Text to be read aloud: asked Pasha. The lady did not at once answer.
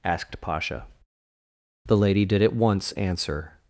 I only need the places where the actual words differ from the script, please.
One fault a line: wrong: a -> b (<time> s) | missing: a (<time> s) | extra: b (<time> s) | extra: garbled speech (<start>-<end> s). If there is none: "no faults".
missing: not (2.4 s)